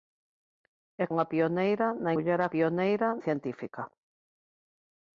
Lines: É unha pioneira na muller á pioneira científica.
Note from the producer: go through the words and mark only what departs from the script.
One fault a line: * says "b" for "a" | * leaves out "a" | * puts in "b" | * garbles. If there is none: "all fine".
all fine